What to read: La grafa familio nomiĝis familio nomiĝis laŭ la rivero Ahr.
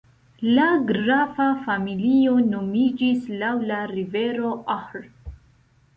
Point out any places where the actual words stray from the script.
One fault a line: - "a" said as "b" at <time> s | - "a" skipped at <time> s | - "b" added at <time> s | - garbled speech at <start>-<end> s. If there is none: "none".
- "familio nomiĝis" skipped at 3.3 s